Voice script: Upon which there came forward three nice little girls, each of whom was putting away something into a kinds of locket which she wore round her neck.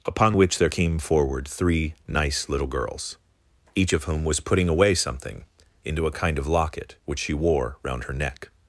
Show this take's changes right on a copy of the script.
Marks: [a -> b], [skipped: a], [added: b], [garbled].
Upon which there came forward three nice little girls, each of whom was putting away something into a [kinds -> kind] of locket which she wore round her neck.